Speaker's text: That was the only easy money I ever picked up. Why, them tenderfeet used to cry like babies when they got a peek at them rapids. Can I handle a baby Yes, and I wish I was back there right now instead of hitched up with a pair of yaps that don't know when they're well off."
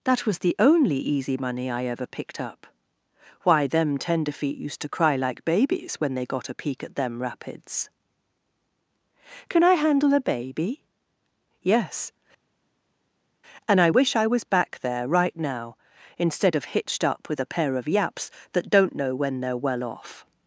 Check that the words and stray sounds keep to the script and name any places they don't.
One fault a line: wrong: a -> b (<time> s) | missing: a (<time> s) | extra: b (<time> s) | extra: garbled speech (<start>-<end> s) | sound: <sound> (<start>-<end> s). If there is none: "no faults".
no faults